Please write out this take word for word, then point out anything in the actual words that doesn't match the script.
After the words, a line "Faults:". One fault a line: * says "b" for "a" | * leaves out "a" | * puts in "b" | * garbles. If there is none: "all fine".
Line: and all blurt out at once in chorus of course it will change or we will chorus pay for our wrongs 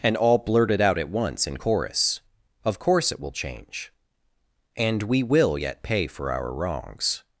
and all blurted out at once in chorus of course it will change and we will yet pay for our wrongs
Faults:
* says "blurted" for "blurt"
* says "and" for "or"
* says "yet" for "chorus"